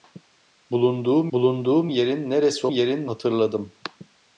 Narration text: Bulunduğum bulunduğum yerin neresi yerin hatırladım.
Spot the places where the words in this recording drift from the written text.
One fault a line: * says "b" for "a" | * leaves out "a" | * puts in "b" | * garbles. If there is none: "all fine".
all fine